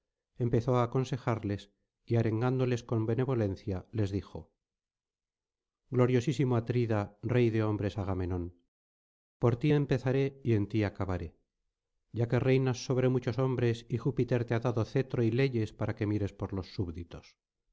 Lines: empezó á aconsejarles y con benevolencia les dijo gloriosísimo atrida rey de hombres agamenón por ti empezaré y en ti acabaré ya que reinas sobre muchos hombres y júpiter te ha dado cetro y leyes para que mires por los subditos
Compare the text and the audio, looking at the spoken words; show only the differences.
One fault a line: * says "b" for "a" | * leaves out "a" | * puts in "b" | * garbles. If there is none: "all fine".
* puts in "arengándoles"